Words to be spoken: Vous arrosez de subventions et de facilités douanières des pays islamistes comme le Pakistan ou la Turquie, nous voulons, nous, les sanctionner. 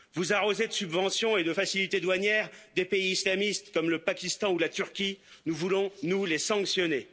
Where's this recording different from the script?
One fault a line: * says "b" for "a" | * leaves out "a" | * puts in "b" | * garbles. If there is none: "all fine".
all fine